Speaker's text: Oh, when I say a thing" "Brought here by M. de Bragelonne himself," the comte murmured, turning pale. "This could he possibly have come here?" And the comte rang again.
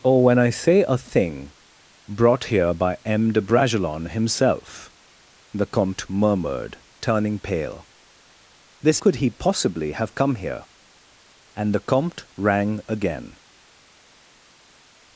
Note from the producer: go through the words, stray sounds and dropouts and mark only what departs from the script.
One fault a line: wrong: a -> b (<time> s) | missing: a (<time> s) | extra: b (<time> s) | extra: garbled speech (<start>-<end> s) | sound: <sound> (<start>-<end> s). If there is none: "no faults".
no faults